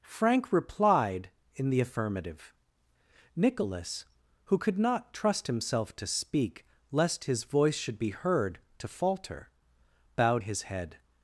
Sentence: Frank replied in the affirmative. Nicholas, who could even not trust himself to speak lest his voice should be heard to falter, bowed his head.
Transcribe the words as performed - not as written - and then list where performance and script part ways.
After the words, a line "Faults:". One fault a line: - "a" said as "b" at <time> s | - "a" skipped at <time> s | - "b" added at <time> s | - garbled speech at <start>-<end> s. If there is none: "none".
Frank replied in the affirmative. Nicholas, who could not trust himself to speak lest his voice should be heard to falter, bowed his head.
Faults:
- "even" skipped at 4.8 s